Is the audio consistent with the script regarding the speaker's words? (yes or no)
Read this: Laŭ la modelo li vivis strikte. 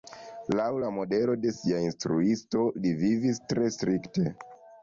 no